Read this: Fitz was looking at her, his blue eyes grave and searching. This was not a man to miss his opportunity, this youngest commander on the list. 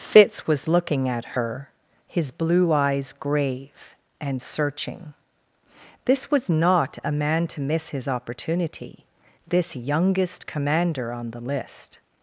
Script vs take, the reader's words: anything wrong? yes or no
no